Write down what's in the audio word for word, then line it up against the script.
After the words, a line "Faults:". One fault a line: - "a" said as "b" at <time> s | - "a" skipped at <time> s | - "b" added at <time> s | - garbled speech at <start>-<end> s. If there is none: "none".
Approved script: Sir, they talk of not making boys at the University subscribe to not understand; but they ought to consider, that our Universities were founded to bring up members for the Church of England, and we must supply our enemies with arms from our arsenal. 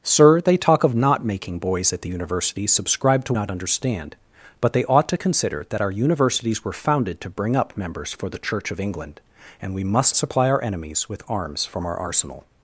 Sir, they talk of not making boys at the University subscribe to not understand; but they ought to consider, that our Universities were founded to bring up members for the Church of England, and we must supply our enemies with arms from our arsenal.
Faults:
none